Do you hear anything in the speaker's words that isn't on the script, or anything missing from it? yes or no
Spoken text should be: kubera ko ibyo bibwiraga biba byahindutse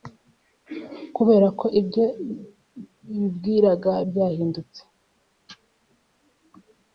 yes